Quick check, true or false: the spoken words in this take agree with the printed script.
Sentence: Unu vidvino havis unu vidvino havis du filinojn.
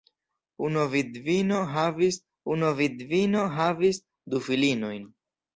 true